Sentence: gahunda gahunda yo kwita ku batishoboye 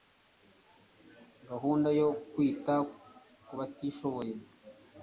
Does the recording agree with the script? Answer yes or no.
no